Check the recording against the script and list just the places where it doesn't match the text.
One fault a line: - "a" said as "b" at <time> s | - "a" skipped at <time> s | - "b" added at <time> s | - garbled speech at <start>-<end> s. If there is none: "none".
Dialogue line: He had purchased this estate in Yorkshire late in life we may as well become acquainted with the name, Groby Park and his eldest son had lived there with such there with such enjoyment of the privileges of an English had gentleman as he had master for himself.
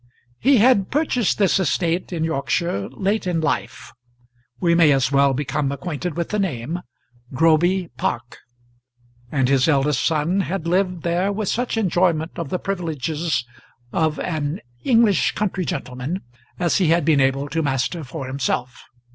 - "there with such" skipped at 11.8 s
- "had" said as "country" at 15.3 s
- "been able to" added at 17.1 s